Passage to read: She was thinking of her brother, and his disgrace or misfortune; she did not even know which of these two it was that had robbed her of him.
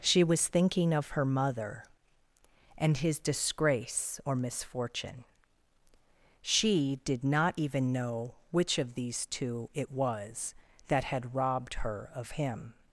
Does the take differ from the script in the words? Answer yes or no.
yes